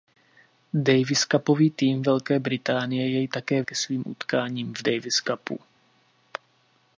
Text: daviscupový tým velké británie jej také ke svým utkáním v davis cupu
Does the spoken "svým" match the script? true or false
true